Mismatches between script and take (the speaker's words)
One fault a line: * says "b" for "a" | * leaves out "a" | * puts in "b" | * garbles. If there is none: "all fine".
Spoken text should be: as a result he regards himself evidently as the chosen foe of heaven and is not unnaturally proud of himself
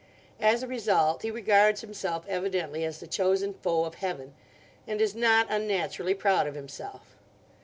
all fine